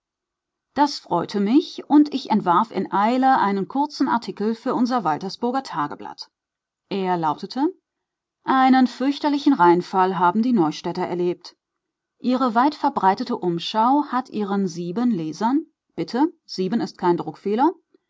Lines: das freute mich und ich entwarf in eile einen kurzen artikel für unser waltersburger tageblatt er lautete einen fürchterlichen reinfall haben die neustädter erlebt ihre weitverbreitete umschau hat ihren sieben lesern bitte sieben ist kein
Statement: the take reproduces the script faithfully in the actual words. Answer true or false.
true